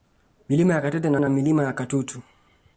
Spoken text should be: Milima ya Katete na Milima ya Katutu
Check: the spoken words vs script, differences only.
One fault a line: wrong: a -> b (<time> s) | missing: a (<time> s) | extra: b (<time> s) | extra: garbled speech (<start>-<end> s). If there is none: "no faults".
extra: na (1.2 s)